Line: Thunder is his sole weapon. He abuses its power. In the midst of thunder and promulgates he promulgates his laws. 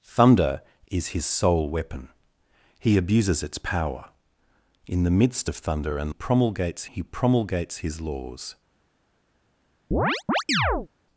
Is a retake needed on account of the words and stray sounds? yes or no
yes